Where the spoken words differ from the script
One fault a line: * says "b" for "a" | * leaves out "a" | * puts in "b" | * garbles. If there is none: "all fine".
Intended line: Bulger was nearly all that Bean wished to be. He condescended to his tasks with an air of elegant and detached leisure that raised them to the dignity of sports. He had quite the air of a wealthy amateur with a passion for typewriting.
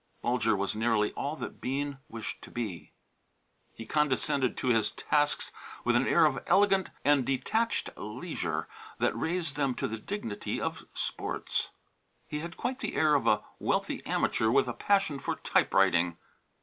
all fine